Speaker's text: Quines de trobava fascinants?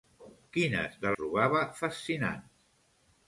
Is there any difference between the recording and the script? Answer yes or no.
no